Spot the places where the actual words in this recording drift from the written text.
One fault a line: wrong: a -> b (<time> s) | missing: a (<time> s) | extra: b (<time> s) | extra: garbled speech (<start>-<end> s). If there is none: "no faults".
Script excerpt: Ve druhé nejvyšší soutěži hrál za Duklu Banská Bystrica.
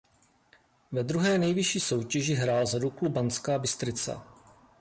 no faults